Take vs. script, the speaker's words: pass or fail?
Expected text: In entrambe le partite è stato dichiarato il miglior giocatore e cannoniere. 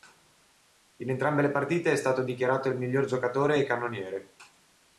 pass